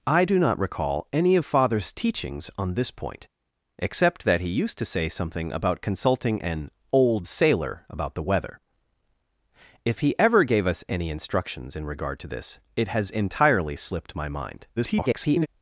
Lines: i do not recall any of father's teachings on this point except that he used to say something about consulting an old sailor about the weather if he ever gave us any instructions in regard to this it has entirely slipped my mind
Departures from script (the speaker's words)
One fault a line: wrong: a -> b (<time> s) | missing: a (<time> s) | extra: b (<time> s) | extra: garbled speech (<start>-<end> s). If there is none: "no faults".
extra: garbled speech (14.8-15.5 s)